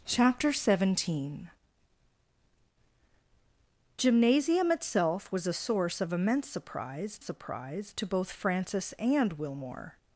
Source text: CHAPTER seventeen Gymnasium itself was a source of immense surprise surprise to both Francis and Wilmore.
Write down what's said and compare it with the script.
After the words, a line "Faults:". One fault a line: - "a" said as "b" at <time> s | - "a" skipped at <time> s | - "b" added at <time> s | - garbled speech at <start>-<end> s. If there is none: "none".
CHAPTER seventeen Gymnasium itself was a source of immense surprise surprise to both Francis and Wilmore.
Faults:
none